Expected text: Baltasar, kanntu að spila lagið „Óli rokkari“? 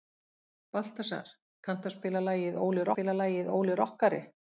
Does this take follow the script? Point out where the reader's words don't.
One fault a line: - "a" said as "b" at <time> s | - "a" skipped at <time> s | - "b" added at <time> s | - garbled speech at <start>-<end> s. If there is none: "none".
- "spila lagið Óli" added at 2.9 s